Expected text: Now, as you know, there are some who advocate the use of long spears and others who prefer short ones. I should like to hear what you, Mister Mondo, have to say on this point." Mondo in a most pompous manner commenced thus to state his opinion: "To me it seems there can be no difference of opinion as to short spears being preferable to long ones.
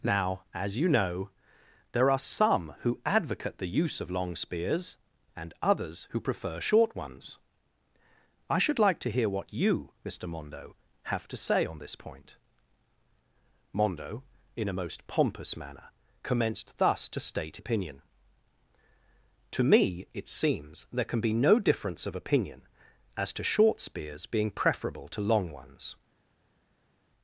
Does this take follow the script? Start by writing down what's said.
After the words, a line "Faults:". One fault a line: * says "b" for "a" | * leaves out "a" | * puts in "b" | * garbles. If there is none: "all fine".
Now, as you know, there are some who advocate the use of long spears and others who prefer short ones. I should like to hear what you, Mister Mondo, have to say on this point." Mondo in a most pompous manner commenced thus to state opinion: "To me it seems there can be no difference of opinion as to short spears being preferable to long ones.
Faults:
* leaves out "his"